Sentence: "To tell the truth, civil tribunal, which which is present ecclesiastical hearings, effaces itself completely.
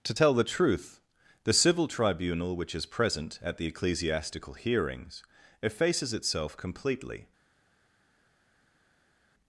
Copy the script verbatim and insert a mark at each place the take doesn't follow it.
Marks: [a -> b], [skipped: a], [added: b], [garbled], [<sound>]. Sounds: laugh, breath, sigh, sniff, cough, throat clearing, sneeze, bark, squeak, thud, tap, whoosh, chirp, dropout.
"To tell the truth, [added: the] civil tribunal, which [skipped: which] is present [added: at the] ecclesiastical hearings, effaces itself completely.